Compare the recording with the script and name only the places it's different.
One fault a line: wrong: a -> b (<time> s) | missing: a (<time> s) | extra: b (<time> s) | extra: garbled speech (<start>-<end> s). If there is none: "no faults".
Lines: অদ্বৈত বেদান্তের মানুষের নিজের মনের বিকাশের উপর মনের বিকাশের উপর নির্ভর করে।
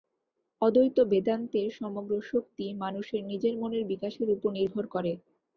extra: সমগ্র শক্তি (1.8 s)
missing: মনের বিকাশের উপর (4.5 s)